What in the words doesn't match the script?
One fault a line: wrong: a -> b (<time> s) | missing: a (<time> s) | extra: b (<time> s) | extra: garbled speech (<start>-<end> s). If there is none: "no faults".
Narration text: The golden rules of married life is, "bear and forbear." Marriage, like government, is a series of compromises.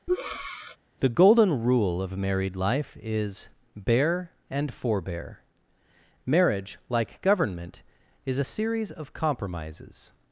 wrong: rules -> rule (1.6 s)